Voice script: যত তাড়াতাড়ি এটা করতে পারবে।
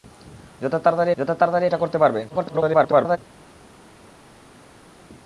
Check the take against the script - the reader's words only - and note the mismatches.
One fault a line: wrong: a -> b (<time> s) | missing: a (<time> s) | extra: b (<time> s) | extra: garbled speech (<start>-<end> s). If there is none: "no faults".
extra: যত তাড়াতাড়ি (1.2 s)
extra: garbled speech (2.3-3.2 s)